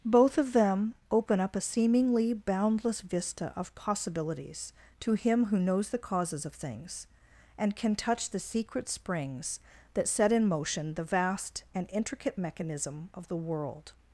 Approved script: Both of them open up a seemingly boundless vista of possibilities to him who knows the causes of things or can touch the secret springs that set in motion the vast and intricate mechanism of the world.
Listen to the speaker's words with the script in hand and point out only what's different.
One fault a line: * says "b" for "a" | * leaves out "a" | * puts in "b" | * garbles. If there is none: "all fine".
* says "and" for "or"